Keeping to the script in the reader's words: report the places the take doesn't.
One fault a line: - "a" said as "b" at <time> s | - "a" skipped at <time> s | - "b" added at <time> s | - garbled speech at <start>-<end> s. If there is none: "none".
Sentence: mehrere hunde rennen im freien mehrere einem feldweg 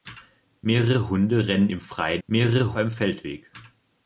none